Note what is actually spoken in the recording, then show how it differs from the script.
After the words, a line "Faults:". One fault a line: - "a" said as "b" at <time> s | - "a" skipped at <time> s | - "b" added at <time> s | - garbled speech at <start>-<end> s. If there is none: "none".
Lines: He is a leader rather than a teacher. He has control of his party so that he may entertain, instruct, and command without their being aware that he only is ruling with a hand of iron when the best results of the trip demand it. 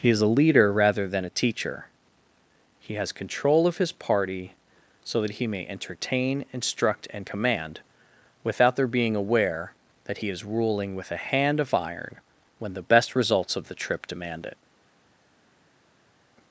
He is a leader rather than a teacher. He has control of his party so that he may entertain, instruct, and command without their being aware that he is ruling with a hand of iron when the best results of the trip demand it.
Faults:
- "only" skipped at 10.3 s